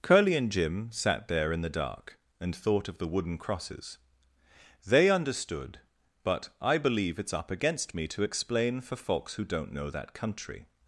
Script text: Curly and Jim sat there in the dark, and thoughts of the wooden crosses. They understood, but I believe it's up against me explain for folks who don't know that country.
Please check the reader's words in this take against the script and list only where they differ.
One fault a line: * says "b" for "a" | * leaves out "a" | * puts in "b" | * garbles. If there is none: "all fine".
* says "thought" for "thoughts"
* puts in "to"